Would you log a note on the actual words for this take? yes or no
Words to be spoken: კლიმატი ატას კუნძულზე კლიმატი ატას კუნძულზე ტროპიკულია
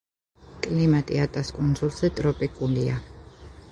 yes